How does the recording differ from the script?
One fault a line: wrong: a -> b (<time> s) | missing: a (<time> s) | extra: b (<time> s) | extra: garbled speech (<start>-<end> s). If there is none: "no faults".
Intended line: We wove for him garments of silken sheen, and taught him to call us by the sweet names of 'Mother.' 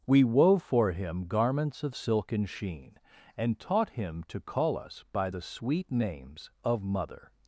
no faults